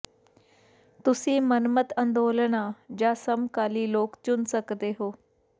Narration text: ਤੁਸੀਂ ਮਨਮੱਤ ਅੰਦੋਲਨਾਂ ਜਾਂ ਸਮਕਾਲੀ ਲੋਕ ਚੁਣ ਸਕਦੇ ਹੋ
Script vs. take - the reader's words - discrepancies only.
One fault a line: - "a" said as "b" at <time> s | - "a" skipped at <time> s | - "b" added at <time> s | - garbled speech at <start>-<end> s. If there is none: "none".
none